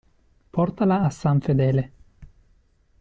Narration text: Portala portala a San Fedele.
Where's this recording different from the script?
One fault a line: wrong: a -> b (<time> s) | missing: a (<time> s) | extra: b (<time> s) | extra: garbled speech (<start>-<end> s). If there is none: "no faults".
missing: portala (1.1 s)